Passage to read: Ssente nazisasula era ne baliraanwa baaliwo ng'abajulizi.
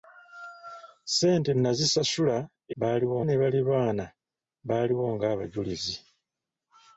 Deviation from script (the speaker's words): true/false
true